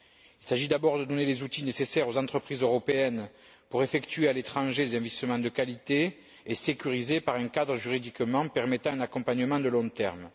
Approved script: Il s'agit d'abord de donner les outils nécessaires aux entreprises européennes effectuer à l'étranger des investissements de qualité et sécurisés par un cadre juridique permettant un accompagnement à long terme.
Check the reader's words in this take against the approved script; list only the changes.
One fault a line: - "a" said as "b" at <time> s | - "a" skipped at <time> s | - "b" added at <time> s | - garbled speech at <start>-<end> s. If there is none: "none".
- "pour" added at 3.7 s